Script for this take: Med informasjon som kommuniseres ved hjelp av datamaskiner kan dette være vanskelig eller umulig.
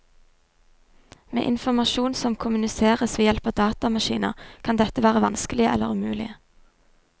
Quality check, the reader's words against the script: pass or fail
pass